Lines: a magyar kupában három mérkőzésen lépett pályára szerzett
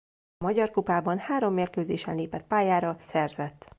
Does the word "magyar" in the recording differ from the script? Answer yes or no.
no